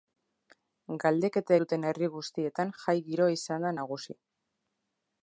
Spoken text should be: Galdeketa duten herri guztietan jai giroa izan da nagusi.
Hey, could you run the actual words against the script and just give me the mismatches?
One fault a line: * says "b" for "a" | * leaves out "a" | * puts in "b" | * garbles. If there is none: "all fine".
all fine